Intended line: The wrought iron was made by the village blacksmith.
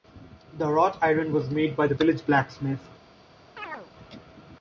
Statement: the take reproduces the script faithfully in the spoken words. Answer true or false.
true